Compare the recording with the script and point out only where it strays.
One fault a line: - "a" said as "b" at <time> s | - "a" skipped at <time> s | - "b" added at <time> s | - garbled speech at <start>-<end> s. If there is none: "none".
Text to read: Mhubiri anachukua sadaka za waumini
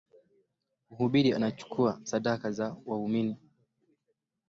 none